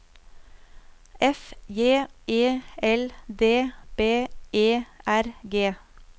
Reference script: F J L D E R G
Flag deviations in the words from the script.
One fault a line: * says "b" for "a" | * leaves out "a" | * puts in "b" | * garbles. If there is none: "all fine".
* puts in "E"
* puts in "B"